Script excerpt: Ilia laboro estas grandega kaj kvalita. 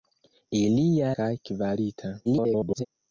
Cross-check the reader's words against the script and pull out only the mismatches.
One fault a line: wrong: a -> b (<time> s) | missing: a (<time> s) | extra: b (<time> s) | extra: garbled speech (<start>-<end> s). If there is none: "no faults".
missing: laboro estas grandega (1.1 s)
extra: garbled speech (2.2-2.9 s)